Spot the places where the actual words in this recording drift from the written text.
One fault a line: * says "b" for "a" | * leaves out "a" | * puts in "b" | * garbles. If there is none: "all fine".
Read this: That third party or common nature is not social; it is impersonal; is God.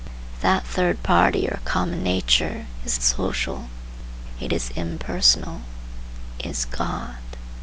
* leaves out "not"